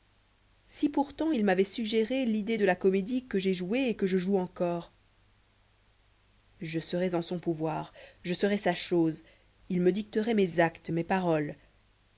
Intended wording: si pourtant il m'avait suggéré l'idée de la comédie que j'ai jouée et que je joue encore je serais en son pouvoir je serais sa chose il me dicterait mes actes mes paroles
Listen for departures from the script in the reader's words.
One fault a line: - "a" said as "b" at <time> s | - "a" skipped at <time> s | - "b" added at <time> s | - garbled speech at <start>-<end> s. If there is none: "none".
none